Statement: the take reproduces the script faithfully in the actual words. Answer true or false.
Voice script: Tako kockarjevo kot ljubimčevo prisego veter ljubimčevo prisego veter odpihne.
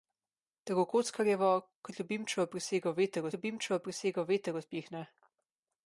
true